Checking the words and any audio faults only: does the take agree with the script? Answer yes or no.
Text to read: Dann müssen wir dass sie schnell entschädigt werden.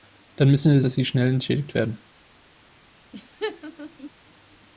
no